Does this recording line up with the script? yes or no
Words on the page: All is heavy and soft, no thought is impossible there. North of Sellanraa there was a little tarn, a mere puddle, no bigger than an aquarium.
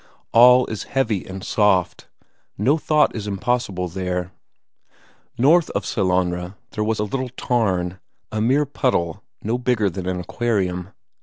yes